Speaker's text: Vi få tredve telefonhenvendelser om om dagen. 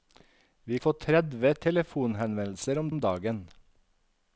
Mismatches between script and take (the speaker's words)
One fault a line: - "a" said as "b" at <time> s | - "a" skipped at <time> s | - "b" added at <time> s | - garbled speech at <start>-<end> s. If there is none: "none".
none